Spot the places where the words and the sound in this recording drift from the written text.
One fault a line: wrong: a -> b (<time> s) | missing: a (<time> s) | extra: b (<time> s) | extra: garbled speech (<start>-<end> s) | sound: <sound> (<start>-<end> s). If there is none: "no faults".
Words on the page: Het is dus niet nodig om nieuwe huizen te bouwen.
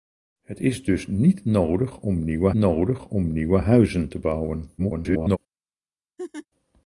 extra: nodig om nieuwe (2.5 s)
extra: garbled speech (4.8-5.4 s)
sound: laugh (6.2-6.5 s)